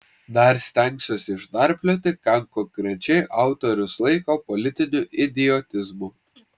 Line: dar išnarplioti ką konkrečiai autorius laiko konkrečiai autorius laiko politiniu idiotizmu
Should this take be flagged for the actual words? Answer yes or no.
yes